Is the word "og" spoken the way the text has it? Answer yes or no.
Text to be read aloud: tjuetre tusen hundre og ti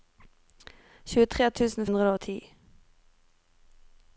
yes